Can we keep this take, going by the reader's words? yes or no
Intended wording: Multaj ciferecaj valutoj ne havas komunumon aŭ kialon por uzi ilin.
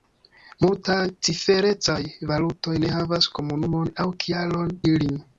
no